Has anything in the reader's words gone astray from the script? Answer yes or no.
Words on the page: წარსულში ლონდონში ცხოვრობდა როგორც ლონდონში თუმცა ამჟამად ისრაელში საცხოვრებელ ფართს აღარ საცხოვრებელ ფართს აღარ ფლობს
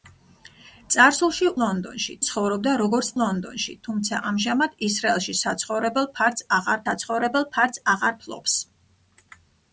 no